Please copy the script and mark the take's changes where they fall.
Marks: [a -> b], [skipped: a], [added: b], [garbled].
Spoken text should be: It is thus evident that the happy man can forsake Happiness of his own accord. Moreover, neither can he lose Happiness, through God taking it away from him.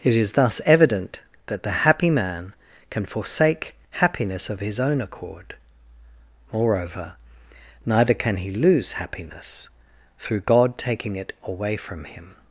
It is thus evident that the happy man can forsake Happiness of his own accord. Moreover, neither can he lose Happiness, through God taking it away from him.